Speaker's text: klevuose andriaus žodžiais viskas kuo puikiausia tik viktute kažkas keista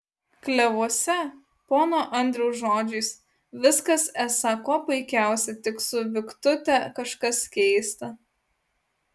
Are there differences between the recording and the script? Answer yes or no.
yes